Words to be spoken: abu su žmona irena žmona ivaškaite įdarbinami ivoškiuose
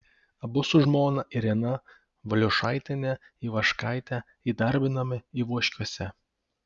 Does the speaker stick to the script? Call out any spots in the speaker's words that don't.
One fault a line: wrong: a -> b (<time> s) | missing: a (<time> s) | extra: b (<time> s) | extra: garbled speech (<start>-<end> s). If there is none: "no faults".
wrong: žmona -> valiušaitiene (2.3 s)